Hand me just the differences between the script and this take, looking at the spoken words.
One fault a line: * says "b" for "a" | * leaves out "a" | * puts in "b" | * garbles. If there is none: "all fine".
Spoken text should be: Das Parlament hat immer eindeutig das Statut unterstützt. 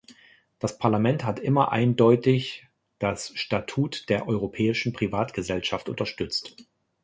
* puts in "der europäischen Privatgesellschaft"